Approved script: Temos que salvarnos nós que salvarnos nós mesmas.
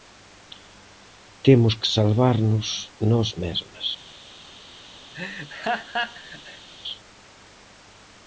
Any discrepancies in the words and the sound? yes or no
yes